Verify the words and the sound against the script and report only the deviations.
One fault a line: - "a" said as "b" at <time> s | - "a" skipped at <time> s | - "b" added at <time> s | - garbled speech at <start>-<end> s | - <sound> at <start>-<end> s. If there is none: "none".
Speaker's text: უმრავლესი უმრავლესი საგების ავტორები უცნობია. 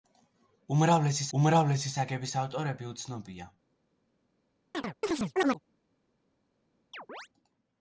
- chirp at 4.7-5.6 s
- chirp at 6.9-7.3 s